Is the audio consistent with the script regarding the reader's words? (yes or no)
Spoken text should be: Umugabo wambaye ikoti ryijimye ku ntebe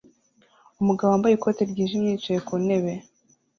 no